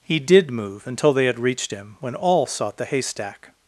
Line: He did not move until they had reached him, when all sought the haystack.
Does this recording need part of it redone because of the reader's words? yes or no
yes